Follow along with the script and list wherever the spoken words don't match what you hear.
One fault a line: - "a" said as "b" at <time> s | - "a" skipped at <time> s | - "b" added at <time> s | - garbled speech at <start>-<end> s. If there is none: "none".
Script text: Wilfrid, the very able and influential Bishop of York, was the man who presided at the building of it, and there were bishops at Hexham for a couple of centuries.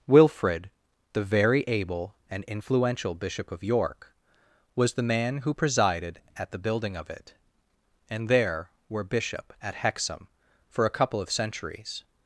- "bishops" said as "bishop" at 9.0 s